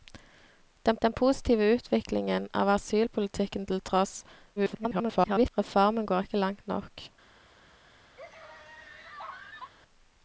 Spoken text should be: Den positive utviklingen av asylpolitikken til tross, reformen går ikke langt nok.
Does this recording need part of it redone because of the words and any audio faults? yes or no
yes